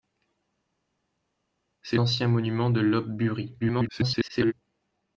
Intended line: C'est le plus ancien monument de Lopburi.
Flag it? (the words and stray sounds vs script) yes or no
yes